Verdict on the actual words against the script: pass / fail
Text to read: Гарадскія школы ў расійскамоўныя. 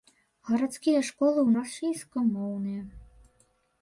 pass